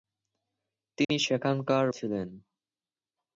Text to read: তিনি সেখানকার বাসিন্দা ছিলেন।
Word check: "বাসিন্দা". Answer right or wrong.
wrong